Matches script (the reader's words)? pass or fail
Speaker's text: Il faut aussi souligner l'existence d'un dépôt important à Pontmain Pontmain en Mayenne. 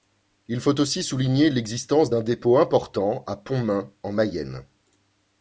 fail